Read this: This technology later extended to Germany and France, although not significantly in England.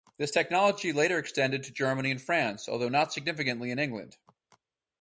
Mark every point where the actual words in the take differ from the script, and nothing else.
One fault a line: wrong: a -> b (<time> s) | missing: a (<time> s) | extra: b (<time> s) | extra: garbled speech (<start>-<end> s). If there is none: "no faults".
no faults